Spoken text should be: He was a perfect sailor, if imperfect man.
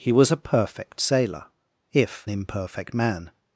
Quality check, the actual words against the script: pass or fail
pass